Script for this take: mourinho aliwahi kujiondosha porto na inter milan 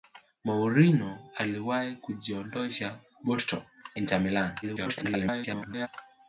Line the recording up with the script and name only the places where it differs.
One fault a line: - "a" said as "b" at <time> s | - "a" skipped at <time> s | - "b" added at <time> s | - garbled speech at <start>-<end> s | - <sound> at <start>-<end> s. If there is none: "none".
- "na" skipped at 3.6 s
- garbled speech at 4.6-5.9 s